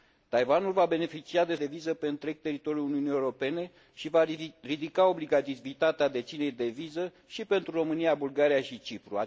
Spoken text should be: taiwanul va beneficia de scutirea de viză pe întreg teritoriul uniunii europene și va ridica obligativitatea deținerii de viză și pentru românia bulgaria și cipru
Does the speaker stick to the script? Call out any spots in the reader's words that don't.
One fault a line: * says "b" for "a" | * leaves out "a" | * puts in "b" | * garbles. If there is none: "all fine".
* leaves out "scutirea"